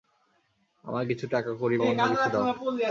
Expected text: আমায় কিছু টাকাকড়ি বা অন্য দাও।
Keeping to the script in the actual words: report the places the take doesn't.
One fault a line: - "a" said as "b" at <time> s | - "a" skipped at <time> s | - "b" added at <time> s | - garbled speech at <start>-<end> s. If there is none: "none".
- "কিছু" added at 2.1 s